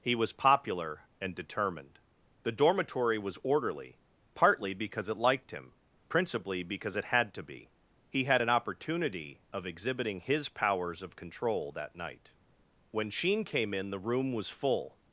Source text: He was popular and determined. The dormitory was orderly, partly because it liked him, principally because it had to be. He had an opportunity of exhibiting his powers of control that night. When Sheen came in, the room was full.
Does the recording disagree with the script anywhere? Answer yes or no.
no